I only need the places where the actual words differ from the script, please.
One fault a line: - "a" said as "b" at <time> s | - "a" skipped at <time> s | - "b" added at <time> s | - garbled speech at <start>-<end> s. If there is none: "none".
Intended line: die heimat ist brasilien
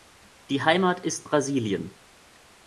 none